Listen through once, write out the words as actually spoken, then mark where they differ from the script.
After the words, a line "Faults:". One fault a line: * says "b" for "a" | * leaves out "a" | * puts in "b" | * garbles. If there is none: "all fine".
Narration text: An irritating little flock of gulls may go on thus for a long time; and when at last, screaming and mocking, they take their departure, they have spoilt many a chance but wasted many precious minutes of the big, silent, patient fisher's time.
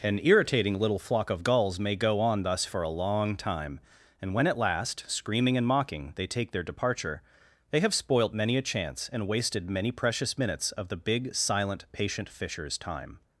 An irritating little flock of gulls may go on thus for a long time; and when at last, screaming and mocking, they take their departure, they have spoilt many a chance and wasted many precious minutes of the big, silent, patient fisher's time.
Faults:
* says "and" for "but"